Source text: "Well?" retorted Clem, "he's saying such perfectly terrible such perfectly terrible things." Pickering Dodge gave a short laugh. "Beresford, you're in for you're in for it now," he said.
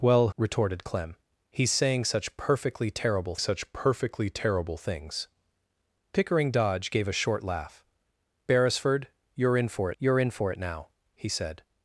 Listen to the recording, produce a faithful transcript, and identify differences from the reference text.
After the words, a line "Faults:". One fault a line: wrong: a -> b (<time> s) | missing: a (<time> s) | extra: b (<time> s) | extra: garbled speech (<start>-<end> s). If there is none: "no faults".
"Well?" retorted Clem, "he's saying such perfectly terrible such perfectly terrible things." Pickering Dodge gave a short laugh. "Beresford, you're in for you're in for it now," he said.
Faults:
no faults